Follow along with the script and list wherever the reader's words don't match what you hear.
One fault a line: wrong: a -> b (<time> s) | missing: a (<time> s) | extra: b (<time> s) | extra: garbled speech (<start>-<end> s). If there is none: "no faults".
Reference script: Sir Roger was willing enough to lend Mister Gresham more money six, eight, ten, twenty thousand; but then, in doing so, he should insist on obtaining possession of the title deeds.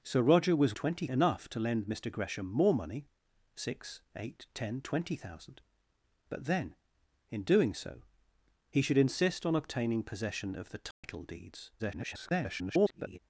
wrong: willing -> twenty (0.7 s)
extra: garbled speech (11.8-13.2 s)